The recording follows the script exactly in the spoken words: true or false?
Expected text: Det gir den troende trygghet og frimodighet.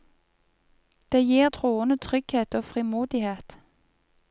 false